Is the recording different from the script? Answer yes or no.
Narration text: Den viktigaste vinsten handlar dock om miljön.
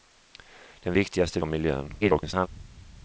yes